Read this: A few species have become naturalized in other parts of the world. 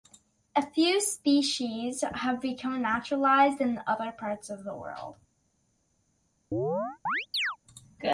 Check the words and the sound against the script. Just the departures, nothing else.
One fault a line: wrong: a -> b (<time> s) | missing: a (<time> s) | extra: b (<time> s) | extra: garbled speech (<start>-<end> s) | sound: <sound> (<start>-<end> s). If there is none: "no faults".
sound: chirp (6.5-7.6 s)